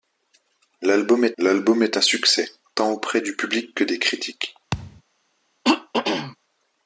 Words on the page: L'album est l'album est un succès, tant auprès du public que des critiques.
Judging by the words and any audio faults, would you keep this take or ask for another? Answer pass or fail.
fail